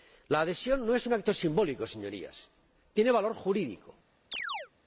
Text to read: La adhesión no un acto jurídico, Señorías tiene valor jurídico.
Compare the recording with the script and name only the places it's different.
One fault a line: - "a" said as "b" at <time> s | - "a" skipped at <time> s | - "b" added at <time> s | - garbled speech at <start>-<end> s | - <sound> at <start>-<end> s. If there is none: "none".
- "es" added at 0.9 s
- "jurídico" said as "simbólico" at 1.3 s
- chirp at 4.3-4.7 s